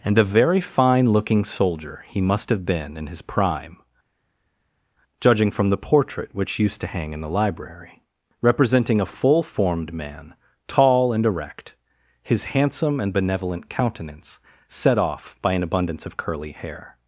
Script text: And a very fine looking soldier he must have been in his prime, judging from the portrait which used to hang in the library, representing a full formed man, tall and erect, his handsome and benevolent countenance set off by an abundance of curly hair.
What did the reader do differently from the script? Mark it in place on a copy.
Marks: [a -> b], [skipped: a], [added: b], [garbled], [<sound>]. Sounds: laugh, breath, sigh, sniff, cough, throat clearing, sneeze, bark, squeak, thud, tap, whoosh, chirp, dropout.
And a very fine looking soldier he must have been in his prime, judging from the portrait which used to hang in the library, representing a full formed man, tall and erect, his handsome and benevolent countenance set off by an abundance of curly hair.